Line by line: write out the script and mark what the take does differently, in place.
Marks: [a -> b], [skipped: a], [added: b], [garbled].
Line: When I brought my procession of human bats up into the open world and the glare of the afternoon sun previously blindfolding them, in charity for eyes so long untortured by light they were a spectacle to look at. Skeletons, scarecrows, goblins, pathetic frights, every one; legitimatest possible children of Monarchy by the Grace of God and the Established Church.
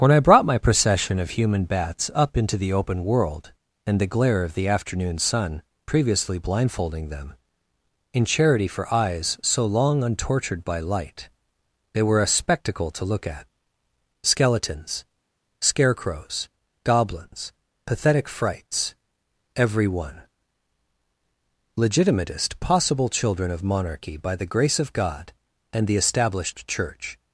When I brought my procession of human bats up into the open world and the glare of the afternoon sun previously blindfolding them, in charity for eyes so long untortured by light they were a spectacle to look at. Skeletons, scarecrows, goblins, pathetic frights, every one; legitimatest possible children of Monarchy by the Grace of God and the Established Church.